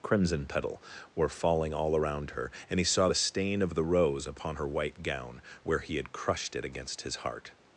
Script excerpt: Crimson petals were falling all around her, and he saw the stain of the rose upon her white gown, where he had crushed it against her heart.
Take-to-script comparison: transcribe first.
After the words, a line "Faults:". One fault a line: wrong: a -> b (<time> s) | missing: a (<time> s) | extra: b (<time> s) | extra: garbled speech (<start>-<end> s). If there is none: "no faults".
Crimson petal were falling all around her, and he saw the stain of the rose upon her white gown, where he had crushed it against his heart.
Faults:
wrong: petals -> petal (0.5 s)
wrong: her -> his (7.0 s)